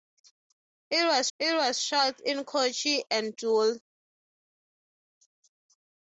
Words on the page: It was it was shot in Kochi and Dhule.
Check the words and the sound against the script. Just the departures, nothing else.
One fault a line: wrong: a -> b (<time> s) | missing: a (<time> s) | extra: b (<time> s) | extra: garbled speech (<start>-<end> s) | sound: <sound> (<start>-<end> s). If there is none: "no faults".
no faults